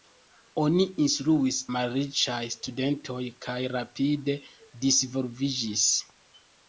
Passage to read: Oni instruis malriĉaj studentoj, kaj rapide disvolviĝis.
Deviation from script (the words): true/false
false